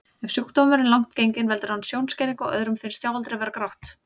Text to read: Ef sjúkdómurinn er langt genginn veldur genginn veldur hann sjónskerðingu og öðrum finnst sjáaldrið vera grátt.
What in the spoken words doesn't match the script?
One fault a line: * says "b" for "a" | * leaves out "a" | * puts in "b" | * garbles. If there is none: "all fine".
* leaves out "genginn veldur"